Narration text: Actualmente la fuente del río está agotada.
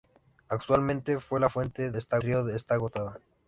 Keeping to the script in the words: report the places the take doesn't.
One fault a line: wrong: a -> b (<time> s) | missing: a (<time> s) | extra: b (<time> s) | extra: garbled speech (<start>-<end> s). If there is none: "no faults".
wrong: del -> está (1.9 s)